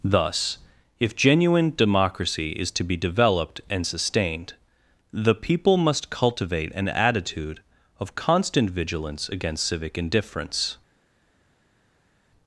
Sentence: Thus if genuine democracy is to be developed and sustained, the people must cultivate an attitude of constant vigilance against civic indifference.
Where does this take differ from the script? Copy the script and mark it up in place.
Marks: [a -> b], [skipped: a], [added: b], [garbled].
Thus if genuine democracy is to be developed and sustained, the people must cultivate an attitude of constant vigilance against civic indifference.